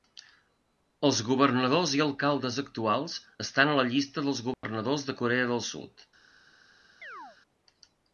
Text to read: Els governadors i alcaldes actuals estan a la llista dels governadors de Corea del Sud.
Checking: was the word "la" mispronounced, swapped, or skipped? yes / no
no